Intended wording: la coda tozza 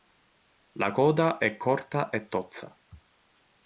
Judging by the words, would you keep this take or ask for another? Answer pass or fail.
fail